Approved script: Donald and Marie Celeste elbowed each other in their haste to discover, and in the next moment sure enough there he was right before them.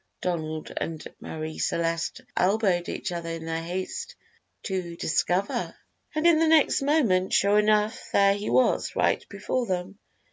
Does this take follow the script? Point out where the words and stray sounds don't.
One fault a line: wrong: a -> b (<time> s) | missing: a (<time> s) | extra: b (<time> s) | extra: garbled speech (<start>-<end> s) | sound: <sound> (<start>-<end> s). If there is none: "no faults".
no faults